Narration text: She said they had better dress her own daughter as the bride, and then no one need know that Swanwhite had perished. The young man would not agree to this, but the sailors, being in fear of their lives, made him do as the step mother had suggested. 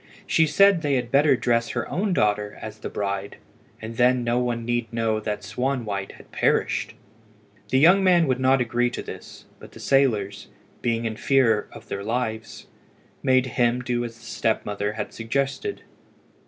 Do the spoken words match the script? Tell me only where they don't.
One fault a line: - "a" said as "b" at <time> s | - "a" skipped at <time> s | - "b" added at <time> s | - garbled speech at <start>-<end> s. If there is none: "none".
none